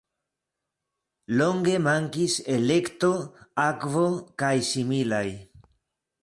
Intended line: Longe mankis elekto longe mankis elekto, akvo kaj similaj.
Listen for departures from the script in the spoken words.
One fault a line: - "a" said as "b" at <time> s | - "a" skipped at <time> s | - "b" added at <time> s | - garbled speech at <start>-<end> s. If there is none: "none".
- "longe mankis elekto" skipped at 3.1 s